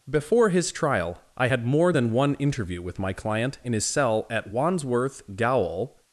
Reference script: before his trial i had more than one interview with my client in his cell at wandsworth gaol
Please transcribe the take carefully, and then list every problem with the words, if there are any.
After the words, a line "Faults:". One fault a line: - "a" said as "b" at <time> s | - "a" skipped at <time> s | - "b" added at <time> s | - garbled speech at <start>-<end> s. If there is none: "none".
before his trial i had more than one interview with my client in his cell at wandsworth gaol
Faults:
none